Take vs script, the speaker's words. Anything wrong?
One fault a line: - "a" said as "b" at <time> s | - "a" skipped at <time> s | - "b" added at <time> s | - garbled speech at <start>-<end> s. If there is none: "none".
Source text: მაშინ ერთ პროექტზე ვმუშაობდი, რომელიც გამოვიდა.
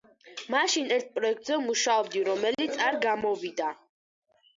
- "არ" added at 2.8 s